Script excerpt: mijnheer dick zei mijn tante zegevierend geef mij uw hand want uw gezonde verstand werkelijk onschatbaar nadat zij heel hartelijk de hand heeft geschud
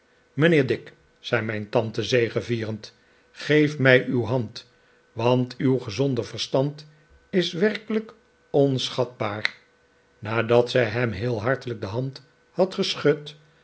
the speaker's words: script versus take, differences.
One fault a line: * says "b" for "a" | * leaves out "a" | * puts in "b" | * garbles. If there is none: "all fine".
* puts in "is"
* puts in "hem"
* says "had" for "heeft"